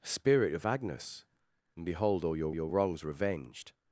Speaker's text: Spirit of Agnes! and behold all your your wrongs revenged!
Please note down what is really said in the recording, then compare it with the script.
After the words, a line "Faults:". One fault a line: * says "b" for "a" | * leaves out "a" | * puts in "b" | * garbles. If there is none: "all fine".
Spirit of Agnes! and behold all your your wrongs revenged!
Faults:
all fine